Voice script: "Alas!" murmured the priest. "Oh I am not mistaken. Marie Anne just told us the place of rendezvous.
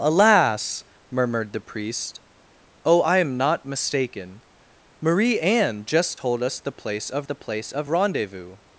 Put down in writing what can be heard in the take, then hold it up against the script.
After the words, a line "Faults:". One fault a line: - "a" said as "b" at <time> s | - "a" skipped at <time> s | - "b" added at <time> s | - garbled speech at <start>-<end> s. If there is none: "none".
"Alas!" murmured the priest. "Oh I am not mistaken. Marie Anne just told us the place of the place of rendezvous.
Faults:
- "the place of" added at 7.2 s